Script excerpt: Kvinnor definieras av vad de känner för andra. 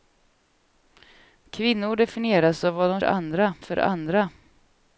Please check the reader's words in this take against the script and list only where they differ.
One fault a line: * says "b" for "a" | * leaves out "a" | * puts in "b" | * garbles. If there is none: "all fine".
* says "andra" for "känner"